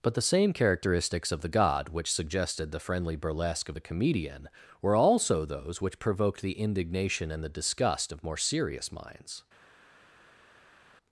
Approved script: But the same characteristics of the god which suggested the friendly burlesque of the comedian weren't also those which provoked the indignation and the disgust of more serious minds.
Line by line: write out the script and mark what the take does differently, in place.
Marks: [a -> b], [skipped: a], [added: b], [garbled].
But the same characteristics of the god which suggested the friendly burlesque of the comedian [weren't -> were] also those which provoked the indignation and the disgust of more serious minds.